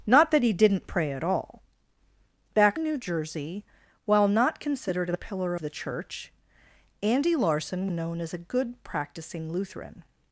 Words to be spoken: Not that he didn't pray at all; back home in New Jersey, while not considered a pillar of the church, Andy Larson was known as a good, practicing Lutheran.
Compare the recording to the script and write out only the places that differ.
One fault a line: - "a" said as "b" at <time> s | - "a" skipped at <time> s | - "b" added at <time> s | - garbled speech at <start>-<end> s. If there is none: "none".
- "home" skipped at 2.8 s
- "of" skipped at 5.5 s
- "was" skipped at 7.9 s